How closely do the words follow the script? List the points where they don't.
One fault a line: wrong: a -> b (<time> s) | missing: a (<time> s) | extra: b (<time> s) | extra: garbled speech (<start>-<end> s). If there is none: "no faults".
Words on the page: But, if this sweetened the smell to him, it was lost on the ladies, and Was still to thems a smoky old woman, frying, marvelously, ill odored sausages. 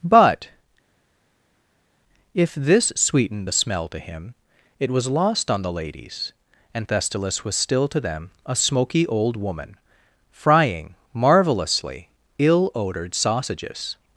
extra: Thestylis (6.9 s)
wrong: thems -> them (8.0 s)